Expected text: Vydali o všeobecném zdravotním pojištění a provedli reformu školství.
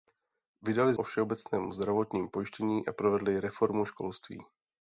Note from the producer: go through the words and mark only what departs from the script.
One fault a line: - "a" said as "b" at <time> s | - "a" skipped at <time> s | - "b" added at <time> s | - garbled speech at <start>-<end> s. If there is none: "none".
none